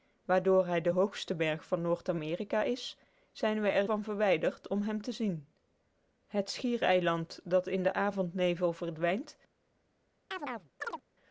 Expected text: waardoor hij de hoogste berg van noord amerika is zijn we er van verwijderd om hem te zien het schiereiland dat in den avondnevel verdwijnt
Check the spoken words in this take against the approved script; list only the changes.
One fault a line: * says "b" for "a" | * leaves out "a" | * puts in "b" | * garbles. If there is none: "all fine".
all fine